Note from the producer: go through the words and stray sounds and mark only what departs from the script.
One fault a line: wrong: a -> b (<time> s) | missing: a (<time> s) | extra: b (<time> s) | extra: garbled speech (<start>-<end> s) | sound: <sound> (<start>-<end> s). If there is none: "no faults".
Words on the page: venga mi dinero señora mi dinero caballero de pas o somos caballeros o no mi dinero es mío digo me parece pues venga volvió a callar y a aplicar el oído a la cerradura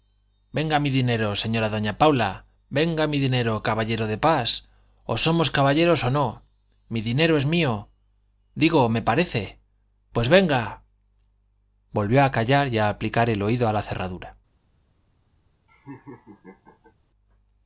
extra: doña paula venga (1.8 s)
sound: laugh (15.7-16.9 s)